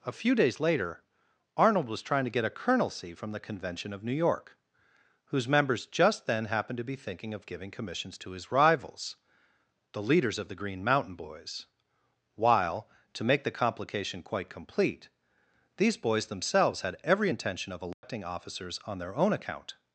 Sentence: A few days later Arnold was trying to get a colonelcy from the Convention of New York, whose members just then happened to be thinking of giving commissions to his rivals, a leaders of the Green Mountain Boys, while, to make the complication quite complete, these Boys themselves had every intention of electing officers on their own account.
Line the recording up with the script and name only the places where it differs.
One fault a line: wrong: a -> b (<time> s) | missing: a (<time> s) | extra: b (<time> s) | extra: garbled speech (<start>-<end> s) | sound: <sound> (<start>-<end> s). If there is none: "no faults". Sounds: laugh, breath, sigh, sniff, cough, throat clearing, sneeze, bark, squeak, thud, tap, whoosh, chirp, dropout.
wrong: a -> the (9.9 s)
sound: dropout (17.9-18.0 s)